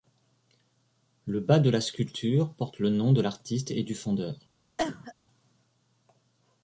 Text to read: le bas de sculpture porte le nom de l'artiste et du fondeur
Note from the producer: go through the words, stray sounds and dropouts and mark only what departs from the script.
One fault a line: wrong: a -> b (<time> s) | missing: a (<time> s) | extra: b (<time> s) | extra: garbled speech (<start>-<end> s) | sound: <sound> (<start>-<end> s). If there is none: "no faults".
extra: la (1.7 s)
sound: cough (4.8-5.1 s)